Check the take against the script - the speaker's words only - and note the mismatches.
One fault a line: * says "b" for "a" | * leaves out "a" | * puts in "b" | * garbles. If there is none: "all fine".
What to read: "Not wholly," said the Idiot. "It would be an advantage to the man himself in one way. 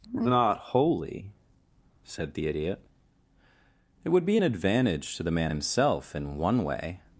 all fine